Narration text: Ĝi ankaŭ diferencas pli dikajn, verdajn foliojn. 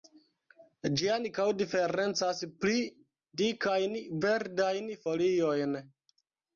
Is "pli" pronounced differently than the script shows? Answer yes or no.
no